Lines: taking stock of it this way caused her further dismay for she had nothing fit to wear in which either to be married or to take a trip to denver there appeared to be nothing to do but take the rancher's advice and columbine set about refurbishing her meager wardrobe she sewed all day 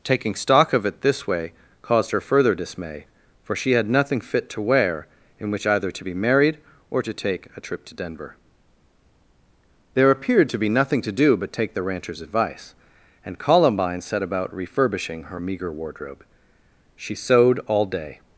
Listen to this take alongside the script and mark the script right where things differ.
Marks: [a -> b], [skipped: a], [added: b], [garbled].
taking stock of it this way caused her further dismay for she had nothing fit to wear in which either to be married or to take a trip to denver there appeared to be nothing to do but take the rancher's advice and columbine set about refurbishing her meager wardrobe she sewed all day